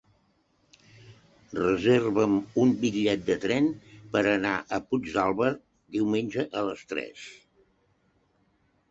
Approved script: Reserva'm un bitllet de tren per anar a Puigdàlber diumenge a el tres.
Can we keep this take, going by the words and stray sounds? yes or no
no